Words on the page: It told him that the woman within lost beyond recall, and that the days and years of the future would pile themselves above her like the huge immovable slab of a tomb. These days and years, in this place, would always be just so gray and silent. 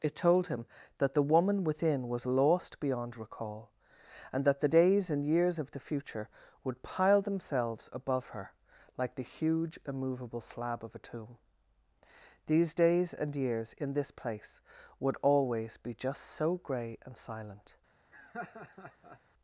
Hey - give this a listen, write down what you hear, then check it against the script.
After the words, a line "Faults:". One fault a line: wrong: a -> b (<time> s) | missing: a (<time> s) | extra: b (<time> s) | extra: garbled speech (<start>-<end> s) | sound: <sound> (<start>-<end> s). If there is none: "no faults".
It told him that the woman within was lost beyond recall, and that the days and years of the future would pile themselves above her like the huge immovable slab of a tomb. These days and years, in this place, would always be just so gray and silent.
Faults:
extra: was (2.1 s)
sound: laugh (18.1-19.2 s)